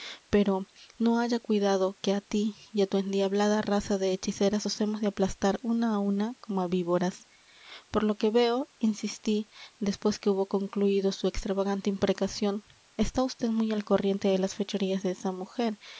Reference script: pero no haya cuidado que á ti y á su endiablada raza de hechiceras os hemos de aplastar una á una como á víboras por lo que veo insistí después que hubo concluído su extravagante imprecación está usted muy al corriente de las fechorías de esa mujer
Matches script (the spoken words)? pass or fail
fail